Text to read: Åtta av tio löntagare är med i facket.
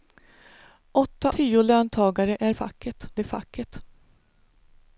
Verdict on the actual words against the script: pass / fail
fail